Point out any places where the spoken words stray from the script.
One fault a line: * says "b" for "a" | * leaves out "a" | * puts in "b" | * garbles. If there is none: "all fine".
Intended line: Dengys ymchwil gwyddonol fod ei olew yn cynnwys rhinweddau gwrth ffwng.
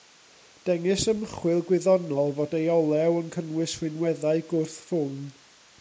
all fine